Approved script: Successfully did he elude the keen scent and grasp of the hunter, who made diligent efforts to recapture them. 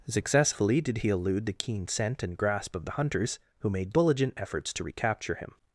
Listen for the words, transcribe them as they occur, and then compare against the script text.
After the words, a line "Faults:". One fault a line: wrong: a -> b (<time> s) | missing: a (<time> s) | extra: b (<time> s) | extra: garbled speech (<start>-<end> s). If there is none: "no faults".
Successfully did he elude the keen scent and grasp of the hunters, who made diligent efforts to recapture him.
Faults:
wrong: hunter -> hunters (2.9 s)
wrong: them -> him (5.4 s)